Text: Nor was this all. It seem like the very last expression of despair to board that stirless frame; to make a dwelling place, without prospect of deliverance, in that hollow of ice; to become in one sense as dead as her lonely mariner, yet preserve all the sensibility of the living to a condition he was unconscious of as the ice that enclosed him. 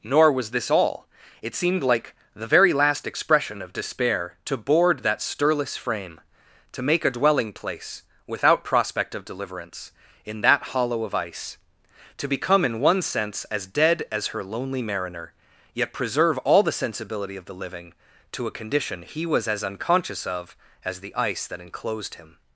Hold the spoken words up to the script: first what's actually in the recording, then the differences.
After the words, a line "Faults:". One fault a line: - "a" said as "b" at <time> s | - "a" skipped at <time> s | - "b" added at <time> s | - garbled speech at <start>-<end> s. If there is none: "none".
Nor was this all. It seemed like the very last expression of despair to board that stirless frame; to make a dwelling place, without prospect of deliverance, in that hollow of ice; to become in one sense as dead as her lonely mariner, yet preserve all the sensibility of the living to a condition he was as unconscious of as the ice that enclosed him.
Faults:
- "seem" said as "seemed" at 1.6 s
- "as" added at 19.5 s